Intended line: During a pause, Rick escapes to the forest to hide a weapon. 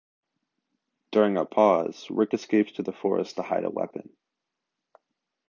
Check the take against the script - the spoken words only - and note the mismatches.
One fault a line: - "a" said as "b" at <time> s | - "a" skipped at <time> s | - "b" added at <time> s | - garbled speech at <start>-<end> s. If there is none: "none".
none